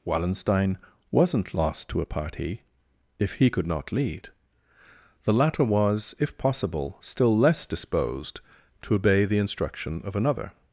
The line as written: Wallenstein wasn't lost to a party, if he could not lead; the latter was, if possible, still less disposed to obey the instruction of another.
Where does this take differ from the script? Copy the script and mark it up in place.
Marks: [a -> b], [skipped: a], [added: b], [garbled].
Wallenstein wasn't lost to a party, if he could not lead; the latter was, if possible, still less disposed to obey the instruction of another.